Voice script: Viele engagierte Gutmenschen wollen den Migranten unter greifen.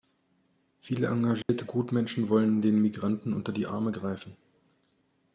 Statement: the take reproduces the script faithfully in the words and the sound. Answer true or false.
false